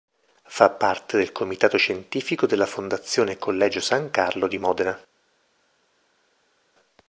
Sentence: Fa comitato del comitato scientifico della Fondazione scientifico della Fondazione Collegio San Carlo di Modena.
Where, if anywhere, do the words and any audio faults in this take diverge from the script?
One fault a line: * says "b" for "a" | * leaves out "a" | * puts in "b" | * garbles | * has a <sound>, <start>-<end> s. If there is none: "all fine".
* says "parte" for "comitato"
* leaves out "scientifico della Fondazione"